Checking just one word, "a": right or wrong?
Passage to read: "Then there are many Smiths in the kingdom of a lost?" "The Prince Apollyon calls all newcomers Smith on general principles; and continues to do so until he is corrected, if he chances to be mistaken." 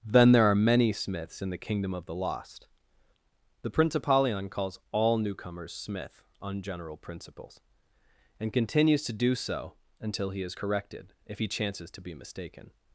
wrong